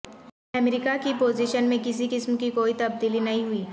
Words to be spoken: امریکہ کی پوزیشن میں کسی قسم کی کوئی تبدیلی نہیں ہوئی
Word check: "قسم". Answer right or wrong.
right